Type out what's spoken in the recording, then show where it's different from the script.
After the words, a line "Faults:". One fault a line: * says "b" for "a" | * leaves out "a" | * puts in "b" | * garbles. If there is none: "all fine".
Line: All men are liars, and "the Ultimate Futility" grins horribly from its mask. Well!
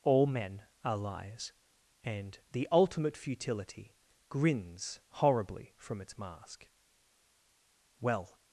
All men are liars, and "the Ultimate Futility" grins horribly from its mask. Well!
Faults:
all fine